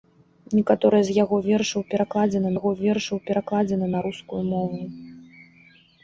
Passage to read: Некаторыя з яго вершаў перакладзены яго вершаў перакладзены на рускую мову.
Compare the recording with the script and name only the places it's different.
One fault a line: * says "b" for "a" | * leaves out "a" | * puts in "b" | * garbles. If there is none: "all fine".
all fine